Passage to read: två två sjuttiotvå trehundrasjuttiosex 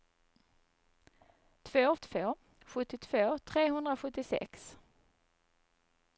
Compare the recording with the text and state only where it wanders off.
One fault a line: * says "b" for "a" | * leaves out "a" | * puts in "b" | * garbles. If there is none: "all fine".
all fine